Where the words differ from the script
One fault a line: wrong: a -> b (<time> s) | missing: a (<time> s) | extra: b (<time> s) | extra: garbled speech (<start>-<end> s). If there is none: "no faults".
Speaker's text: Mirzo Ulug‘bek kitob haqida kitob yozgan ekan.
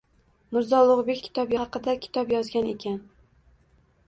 no faults